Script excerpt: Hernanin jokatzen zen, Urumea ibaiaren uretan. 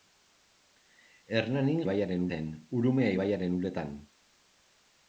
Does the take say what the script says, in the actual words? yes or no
no